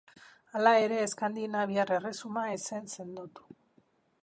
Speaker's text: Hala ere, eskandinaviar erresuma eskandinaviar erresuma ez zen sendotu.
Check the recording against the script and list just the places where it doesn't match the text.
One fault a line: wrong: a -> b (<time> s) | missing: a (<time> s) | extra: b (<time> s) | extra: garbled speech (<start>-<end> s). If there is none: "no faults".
missing: eskandinaviar erresuma (2.5 s)